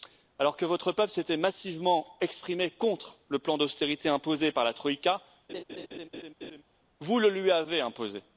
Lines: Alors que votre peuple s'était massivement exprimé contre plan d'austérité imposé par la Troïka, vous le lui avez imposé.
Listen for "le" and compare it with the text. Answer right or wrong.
right